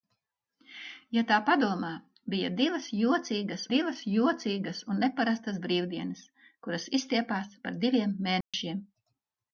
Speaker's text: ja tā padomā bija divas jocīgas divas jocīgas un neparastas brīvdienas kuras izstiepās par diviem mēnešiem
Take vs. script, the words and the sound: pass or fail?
fail